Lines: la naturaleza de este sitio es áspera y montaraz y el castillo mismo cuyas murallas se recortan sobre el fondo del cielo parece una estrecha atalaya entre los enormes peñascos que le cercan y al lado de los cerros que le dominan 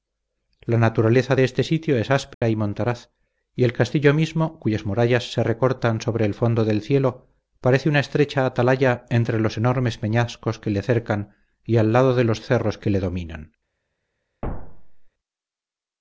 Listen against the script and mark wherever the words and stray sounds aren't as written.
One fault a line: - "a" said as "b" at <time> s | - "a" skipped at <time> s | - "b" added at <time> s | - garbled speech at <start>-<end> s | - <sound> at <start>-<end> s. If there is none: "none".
- dropout at 2.3-2.4 s
- thud at 14.4-15.1 s